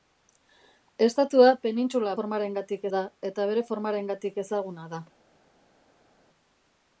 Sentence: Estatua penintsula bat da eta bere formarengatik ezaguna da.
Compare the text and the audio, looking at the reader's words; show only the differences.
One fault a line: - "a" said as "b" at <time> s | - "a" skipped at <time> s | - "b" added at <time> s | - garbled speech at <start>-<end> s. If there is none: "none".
- "bat" said as "formarengatik" at 2.2 s